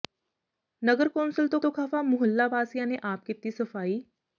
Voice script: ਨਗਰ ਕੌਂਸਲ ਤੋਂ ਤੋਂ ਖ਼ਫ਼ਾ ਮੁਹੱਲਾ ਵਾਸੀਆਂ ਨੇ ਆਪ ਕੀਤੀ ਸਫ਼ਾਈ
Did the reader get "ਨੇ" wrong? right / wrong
right